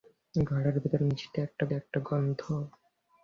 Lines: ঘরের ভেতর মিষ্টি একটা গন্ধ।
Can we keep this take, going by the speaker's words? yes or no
no